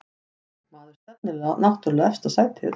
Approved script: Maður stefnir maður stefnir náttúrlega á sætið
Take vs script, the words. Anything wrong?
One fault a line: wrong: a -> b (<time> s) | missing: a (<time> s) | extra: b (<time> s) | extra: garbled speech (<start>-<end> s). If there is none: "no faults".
missing: maður stefnir (1.4 s)
extra: efsta (2.1 s)